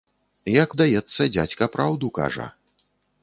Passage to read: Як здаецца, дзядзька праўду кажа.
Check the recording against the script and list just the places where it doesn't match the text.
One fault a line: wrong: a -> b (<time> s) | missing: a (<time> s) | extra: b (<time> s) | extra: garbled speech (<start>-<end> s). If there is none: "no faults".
no faults